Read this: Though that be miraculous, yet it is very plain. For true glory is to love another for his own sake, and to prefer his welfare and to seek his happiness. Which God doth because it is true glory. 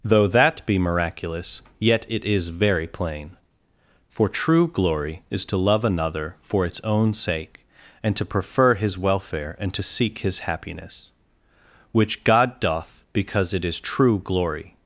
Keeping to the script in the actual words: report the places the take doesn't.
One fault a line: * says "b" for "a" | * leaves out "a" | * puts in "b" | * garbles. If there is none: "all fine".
* says "its" for "his"